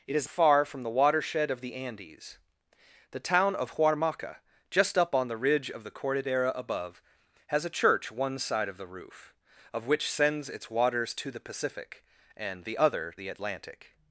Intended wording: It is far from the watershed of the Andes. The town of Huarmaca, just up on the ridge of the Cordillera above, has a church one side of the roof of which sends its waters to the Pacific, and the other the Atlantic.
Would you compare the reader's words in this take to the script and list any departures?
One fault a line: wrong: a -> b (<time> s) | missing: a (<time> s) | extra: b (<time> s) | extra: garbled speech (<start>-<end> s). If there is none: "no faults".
no faults